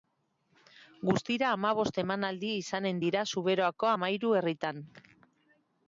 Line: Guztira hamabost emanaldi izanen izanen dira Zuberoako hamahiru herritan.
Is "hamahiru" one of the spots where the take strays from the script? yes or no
no